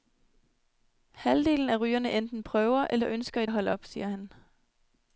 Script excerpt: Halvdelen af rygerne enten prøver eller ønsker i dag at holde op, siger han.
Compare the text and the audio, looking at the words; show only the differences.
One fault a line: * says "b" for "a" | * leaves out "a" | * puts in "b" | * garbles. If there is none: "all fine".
* leaves out "dag"